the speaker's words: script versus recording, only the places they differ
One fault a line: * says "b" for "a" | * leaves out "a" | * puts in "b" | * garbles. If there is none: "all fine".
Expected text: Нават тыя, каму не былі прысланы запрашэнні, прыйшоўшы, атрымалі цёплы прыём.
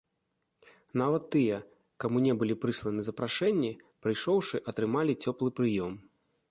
all fine